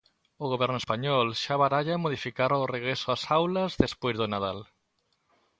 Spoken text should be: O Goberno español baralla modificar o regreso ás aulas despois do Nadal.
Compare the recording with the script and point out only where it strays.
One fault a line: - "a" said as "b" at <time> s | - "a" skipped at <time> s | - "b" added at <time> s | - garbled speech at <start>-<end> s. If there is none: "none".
- "xa" added at 1.4 s